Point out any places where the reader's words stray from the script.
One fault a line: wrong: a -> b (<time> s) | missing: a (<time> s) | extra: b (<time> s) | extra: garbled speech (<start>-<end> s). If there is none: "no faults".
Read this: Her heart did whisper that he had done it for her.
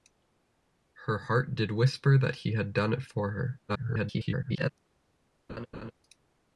extra: garbled speech (3.7-4.7 s)